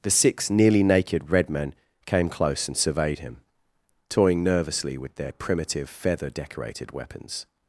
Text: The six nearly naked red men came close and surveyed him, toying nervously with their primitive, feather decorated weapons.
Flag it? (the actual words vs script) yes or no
no